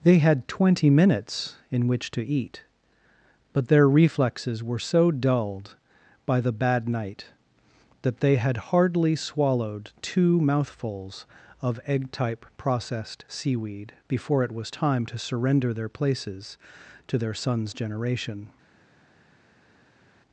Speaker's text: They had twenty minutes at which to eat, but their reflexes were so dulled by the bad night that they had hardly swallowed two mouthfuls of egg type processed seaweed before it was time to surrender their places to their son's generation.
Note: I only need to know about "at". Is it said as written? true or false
false